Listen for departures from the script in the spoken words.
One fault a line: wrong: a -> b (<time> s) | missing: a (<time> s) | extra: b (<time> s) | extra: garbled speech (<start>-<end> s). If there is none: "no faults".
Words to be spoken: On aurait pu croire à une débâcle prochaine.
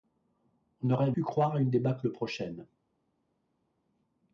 no faults